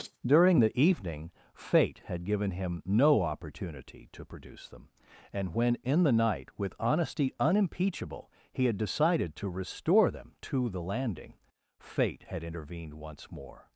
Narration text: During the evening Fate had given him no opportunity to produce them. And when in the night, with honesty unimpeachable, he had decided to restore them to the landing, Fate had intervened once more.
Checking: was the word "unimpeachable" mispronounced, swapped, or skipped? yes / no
no